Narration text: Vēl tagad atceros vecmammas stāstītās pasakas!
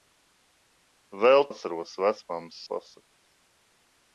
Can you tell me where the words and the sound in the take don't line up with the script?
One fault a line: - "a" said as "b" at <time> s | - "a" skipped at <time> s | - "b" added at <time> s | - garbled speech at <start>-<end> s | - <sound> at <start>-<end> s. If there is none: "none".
- "tagad" skipped at 1.4 s
- "stāstītās" skipped at 2.6 s